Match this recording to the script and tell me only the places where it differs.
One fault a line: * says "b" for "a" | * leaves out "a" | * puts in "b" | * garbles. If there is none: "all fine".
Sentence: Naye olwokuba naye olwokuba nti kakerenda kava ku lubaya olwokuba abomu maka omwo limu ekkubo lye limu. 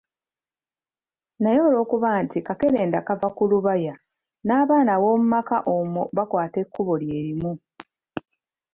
* leaves out "naye olwokuba"
* says "n'abaana" for "olwokuba"
* says "bakwata" for "limu"